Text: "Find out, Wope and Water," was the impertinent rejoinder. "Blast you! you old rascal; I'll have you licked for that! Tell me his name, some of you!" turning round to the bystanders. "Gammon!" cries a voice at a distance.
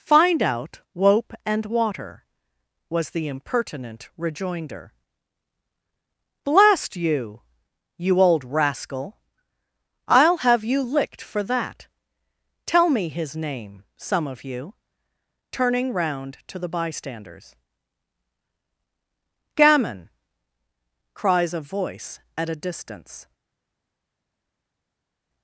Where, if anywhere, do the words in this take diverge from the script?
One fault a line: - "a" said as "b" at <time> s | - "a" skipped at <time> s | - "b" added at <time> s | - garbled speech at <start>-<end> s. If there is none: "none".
none